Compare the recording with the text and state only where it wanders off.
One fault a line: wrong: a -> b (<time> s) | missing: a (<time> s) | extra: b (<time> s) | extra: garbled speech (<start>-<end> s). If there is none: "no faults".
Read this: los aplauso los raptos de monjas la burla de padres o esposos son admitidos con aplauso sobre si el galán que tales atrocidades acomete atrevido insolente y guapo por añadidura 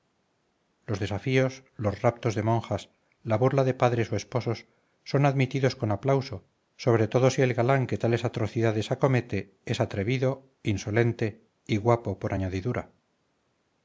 wrong: aplauso -> desafíos (1.0 s)
extra: todo (7.1 s)
extra: es (9.7 s)